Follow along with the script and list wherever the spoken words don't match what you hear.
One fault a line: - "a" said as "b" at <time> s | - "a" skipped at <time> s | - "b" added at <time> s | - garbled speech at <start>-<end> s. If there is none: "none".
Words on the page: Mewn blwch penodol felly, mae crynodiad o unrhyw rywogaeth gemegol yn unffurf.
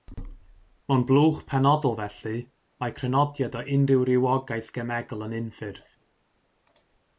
none